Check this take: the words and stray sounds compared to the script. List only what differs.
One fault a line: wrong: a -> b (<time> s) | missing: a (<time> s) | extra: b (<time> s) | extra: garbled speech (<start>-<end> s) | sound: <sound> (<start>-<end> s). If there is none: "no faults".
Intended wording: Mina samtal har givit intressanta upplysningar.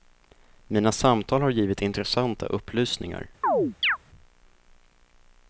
sound: chirp (3.4-4.0 s)